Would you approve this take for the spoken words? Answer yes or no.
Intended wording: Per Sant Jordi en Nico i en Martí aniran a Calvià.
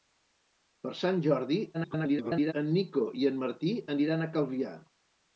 no